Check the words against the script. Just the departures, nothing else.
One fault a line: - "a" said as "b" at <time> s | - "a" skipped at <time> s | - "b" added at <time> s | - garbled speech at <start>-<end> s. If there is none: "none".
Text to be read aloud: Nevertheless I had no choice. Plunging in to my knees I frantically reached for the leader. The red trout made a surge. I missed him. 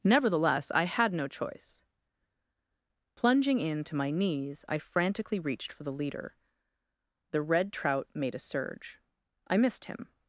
none